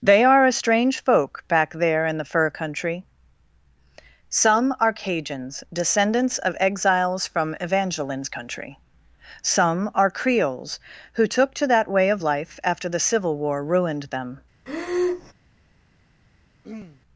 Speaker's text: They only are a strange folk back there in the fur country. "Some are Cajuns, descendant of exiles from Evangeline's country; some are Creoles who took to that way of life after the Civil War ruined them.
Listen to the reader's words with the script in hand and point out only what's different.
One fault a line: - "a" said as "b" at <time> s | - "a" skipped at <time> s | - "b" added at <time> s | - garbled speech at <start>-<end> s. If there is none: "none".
- "only" skipped at 0.2 s
- "descendant" said as "descendants" at 5.7 s